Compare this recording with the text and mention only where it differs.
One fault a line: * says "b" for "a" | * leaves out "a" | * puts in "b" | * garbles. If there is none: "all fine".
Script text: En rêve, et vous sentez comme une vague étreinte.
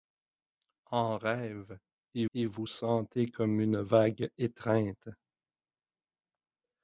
* puts in "et"